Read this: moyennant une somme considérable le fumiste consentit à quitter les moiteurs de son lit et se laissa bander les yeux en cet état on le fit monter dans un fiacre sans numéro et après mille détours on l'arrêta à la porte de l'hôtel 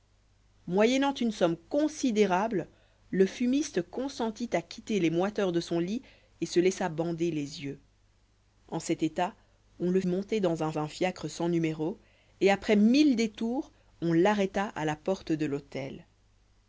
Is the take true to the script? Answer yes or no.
no